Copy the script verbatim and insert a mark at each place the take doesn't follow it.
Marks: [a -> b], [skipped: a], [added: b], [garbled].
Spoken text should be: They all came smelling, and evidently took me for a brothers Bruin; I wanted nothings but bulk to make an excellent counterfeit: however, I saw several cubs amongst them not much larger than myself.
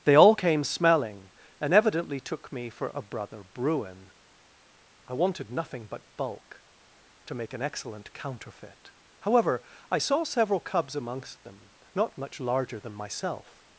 They all came smelling, and evidently took me for a [brothers -> brother] Bruin; I wanted [nothings -> nothing] but bulk to make an excellent counterfeit: however, I saw several cubs amongst them not much larger than myself.